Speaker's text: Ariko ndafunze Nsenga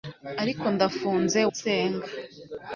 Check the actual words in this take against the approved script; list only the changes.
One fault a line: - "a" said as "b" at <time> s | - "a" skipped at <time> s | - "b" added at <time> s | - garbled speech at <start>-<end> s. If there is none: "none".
none